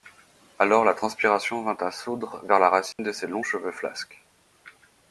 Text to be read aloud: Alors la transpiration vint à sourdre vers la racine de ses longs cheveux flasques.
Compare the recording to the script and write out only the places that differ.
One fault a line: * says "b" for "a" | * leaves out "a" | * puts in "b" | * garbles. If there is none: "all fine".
all fine